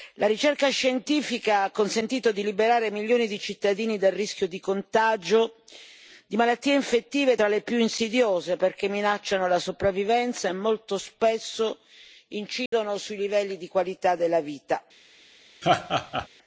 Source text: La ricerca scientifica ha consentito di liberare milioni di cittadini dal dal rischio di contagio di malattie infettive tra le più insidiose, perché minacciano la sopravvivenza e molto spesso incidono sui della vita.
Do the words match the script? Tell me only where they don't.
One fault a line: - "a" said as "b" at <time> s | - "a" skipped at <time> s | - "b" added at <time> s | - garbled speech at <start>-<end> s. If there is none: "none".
- "dal" skipped at 4.1 s
- "livelli di qualità" added at 13.2 s